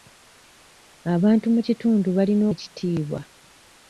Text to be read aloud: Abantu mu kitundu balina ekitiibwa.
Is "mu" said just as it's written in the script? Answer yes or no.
yes